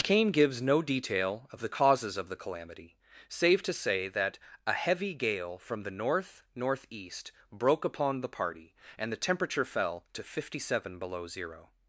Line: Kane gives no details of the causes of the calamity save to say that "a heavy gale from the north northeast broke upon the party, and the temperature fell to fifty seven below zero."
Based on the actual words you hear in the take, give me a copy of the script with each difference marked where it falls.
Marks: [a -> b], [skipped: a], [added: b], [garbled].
Kane gives no [details -> detail] of the causes of the calamity save to say that "a heavy gale from the north northeast broke upon the party, and the temperature fell to fifty seven below zero."